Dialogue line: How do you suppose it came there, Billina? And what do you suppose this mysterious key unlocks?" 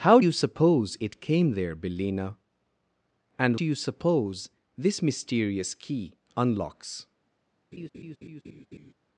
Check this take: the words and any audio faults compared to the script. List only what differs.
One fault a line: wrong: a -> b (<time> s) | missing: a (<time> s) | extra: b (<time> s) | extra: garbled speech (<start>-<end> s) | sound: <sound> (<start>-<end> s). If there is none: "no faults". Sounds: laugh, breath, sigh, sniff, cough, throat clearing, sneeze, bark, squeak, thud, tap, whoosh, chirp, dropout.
missing: do (0.2 s)
missing: what (3.6 s)
sound: laugh (7.7-8.9 s)